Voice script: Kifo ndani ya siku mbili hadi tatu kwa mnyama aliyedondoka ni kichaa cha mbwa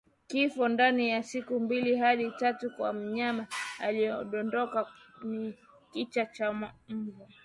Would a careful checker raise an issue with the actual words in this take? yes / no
no